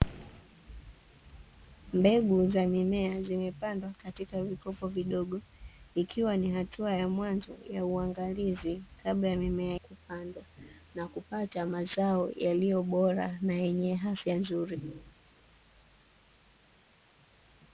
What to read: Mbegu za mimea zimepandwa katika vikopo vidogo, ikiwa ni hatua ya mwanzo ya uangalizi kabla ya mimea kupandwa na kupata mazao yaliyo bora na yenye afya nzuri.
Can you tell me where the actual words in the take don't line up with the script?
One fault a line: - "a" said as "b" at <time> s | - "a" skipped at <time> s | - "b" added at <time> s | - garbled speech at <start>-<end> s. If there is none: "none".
none